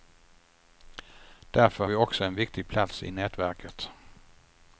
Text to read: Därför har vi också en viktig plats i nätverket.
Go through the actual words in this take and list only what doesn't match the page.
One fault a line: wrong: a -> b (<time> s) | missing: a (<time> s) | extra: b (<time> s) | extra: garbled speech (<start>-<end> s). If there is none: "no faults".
missing: har (1.9 s)